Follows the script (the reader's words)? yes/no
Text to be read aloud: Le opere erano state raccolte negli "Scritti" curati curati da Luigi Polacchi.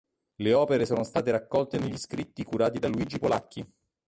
no